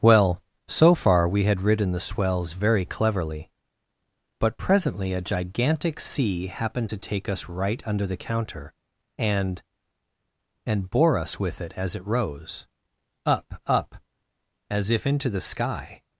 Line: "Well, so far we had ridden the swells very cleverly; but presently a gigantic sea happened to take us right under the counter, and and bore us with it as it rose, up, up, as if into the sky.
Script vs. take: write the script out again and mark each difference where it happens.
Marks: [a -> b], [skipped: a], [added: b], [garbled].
"Well, so far we had ridden the swells very cleverly; but presently a gigantic sea happened to take us right under the counter, and and bore us with it as it rose, up, up, as if into the sky.